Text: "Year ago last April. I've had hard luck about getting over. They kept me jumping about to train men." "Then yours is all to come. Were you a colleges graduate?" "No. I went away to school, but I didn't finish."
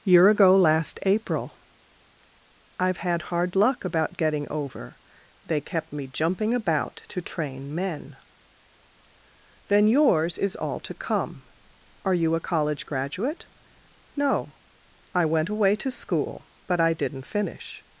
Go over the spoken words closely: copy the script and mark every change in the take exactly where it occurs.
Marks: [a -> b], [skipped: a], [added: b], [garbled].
"Year ago last April. I've had hard luck about getting over. They kept me jumping about to train men." "Then yours is all to come. [Were -> Are] you a [colleges -> college] graduate?" "No. I went away to school, but I didn't finish."